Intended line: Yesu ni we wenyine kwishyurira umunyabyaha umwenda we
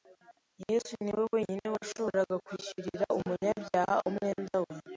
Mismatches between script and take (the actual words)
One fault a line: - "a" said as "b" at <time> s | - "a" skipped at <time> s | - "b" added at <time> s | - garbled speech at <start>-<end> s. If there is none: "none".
- "washoboraga" added at 1.8 s